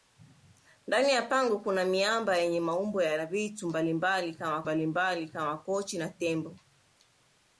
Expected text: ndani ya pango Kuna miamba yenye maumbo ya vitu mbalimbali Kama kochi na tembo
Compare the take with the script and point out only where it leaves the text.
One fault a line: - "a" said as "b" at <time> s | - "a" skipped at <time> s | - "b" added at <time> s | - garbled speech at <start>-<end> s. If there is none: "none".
- "mbalimbali Kama" added at 4.6 s